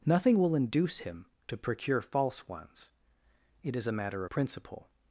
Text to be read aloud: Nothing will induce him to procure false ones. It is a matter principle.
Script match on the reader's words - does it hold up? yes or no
yes